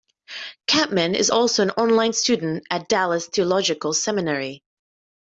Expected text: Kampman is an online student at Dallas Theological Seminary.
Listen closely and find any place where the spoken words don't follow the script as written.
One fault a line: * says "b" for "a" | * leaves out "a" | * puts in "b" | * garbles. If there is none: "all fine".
* puts in "also"